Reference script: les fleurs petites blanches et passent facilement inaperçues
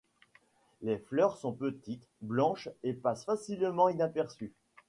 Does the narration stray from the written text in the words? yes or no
yes